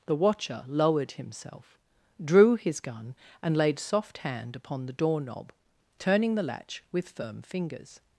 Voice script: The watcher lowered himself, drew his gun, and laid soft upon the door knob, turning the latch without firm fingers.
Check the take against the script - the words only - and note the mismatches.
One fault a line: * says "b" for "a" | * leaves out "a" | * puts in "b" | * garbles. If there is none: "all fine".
* puts in "hand"
* says "with" for "without"